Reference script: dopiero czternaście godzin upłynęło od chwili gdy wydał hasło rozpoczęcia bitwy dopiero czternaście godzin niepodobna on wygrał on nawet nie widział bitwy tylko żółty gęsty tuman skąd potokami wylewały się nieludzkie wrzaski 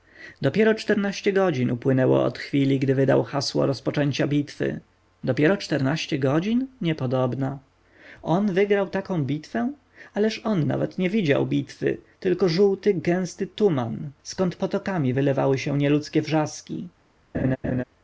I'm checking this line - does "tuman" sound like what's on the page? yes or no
yes